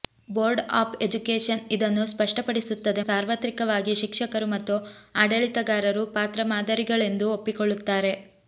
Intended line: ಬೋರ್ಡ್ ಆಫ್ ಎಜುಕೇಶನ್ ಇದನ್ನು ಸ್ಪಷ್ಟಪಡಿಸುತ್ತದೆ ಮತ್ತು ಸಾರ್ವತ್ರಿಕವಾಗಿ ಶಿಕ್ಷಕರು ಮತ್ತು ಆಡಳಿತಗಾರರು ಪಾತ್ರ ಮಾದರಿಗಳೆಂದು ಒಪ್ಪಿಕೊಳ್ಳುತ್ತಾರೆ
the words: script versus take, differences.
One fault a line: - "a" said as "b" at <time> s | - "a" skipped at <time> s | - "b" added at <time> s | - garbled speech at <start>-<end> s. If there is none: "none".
- "ಮತ್ತು" skipped at 3.0 s